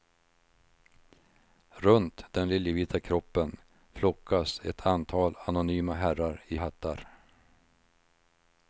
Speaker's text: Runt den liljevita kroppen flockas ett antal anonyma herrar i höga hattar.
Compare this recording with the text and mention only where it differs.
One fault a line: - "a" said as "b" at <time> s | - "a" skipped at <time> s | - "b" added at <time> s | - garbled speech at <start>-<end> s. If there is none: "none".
- "höga" skipped at 6.6 s